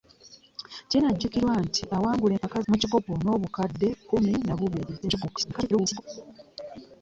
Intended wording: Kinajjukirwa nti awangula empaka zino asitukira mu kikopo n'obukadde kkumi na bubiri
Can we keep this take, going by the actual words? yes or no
no